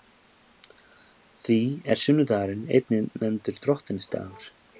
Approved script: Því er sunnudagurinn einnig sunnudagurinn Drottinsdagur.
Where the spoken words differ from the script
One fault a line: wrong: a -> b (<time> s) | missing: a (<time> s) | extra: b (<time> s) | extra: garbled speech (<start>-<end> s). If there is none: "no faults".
wrong: sunnudagurinn -> nefndur (3.2 s)